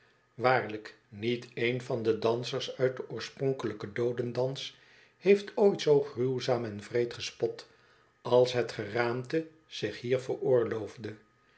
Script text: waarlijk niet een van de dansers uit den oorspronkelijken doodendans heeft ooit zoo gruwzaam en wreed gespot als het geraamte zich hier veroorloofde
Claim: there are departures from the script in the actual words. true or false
false